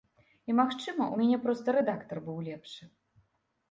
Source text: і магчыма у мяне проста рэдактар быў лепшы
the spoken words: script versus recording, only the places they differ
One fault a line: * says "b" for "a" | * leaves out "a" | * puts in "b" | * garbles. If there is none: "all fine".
all fine